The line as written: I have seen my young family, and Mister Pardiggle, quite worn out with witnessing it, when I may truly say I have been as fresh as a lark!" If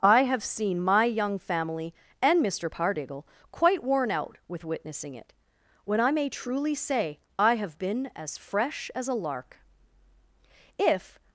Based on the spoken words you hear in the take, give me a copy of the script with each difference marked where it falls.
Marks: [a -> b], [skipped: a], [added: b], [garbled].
I have seen my young family, and Mister Pardiggle, quite worn out with witnessing it, when I may truly say I have been as fresh as a lark!" If